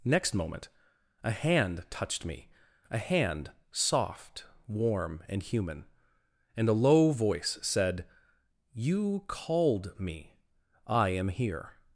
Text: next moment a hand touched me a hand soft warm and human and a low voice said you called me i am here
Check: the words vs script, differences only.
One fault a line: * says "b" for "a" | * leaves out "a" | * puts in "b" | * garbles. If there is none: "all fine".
all fine